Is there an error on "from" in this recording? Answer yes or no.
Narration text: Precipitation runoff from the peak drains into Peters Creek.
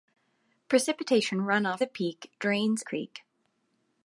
yes